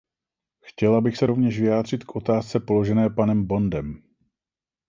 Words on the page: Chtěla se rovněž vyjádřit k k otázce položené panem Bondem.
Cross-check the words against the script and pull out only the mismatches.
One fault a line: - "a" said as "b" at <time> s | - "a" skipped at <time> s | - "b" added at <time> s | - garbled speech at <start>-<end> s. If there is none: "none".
- "bych" added at 1.0 s
- "k" skipped at 2.1 s